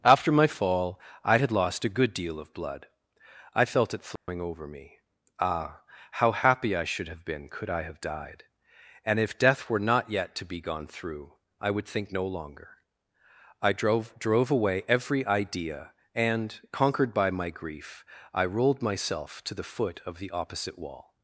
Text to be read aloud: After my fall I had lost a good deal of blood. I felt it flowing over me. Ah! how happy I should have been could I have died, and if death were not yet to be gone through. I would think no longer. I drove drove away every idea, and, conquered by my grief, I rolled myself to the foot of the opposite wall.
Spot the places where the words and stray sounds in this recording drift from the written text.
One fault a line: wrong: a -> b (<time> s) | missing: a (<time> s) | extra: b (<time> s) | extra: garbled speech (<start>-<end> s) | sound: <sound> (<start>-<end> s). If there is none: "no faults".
sound: dropout (4.2-4.3 s)